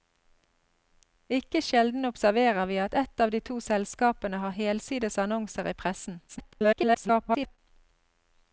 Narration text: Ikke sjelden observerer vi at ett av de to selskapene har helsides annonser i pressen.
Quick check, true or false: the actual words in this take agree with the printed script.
false